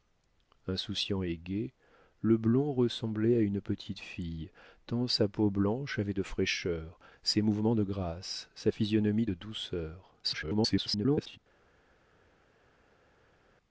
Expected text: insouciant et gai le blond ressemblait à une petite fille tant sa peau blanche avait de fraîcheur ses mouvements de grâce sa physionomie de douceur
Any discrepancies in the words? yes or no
yes